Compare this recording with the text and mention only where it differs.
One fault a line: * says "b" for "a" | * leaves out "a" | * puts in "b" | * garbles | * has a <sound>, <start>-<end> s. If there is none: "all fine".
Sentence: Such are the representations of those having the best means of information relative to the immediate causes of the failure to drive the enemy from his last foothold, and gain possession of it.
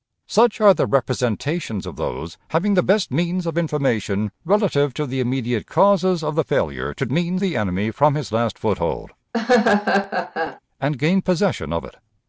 * says "means" for "drive"
* has a laugh, 9.3-10.6 s